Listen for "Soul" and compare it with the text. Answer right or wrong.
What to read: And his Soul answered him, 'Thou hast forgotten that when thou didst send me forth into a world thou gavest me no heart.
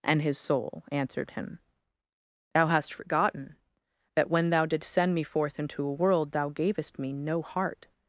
right